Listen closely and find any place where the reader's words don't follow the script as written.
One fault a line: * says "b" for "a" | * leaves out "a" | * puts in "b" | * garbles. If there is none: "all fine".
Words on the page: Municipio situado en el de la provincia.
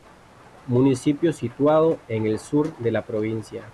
* puts in "sur"